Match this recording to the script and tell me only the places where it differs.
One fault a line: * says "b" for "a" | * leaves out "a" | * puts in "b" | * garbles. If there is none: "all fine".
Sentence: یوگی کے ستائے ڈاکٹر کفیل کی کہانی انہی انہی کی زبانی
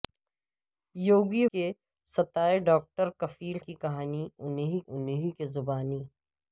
all fine